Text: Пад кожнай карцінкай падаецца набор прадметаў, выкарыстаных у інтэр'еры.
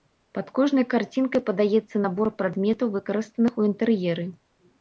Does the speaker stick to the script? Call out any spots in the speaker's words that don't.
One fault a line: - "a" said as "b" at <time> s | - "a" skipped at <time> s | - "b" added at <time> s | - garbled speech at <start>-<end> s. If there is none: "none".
none